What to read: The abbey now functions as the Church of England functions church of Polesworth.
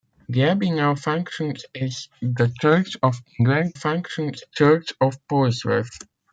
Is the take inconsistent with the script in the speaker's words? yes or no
no